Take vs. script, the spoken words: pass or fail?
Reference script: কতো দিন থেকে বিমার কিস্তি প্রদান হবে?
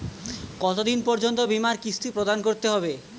fail